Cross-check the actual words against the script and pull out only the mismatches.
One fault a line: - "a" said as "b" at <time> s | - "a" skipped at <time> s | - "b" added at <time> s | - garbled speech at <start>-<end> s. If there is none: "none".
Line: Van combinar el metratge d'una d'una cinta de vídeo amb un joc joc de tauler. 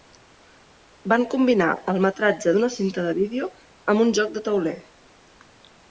- "d'una" skipped at 2.7 s
- "joc" skipped at 4.4 s